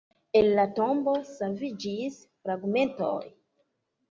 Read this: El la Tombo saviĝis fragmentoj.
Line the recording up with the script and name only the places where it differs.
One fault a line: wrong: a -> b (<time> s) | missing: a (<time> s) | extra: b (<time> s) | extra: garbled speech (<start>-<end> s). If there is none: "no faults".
no faults